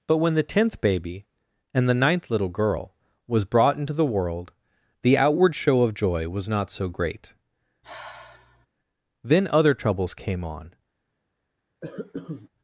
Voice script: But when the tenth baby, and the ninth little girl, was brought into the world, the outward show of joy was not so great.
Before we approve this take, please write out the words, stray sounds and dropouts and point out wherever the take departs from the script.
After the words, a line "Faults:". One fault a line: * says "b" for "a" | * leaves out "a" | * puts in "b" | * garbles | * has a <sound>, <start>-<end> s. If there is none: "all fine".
But when the tenth baby, and the ninth little girl, was brought into the world, the outward show of joy was not so great. Then other troubles came on
Faults:
* has a sigh, 7.8-8.7 s
* puts in "Then other troubles came on"
* has a cough, 11.8-12.5 s